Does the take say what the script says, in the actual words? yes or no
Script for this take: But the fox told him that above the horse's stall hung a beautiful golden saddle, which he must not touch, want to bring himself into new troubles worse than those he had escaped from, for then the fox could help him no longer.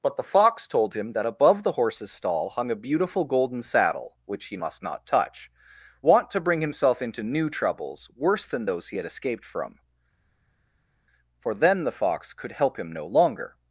yes